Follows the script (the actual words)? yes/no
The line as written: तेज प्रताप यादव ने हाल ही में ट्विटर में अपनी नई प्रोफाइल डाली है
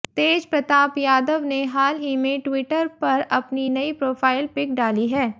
no